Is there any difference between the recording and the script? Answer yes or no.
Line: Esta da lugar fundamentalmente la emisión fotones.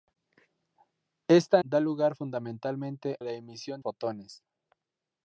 no